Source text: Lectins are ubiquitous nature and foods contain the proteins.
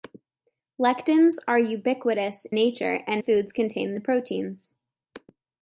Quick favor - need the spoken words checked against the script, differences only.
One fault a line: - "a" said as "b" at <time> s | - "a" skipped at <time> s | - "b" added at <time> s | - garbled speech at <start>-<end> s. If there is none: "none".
none